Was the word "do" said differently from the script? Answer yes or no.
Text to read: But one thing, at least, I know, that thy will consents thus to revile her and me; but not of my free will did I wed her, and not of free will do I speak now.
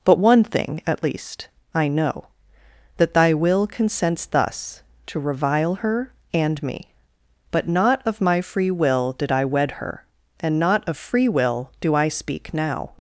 no